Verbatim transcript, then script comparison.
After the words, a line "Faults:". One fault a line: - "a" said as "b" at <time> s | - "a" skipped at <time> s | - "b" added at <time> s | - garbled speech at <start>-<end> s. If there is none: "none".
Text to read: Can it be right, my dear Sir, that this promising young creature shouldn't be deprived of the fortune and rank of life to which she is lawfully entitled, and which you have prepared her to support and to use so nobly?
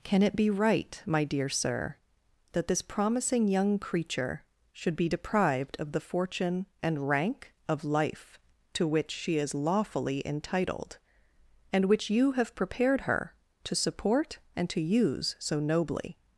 Can it be right, my dear Sir, that this promising young creature should be deprived of the fortune and rank of life to which she is lawfully entitled, and which you have prepared her to support and to use so nobly?
Faults:
- "shouldn't" said as "should" at 4.7 s